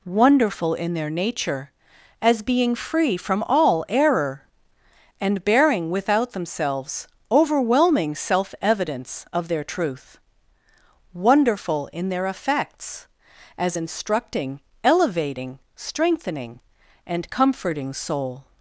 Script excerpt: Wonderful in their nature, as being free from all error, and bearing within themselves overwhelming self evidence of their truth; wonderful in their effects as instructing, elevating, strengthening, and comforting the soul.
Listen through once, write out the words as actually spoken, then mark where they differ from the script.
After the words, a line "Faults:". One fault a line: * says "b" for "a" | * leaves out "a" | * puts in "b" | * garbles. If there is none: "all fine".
Wonderful in their nature, as being free from all error, and bearing without themselves overwhelming self evidence of their truth; wonderful in their effects as instructing, elevating, strengthening, and comforting soul.
Faults:
* says "without" for "within"
* leaves out "the"